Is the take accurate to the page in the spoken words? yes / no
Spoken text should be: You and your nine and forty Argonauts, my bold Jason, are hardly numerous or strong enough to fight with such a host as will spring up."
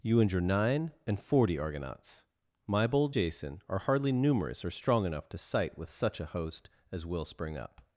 no